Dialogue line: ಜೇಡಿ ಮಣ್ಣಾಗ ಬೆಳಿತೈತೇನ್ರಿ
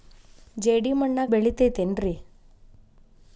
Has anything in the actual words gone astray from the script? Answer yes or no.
no